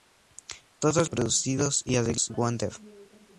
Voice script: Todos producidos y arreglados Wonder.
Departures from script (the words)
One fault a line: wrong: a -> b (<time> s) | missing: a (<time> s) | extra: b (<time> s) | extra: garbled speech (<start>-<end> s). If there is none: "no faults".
no faults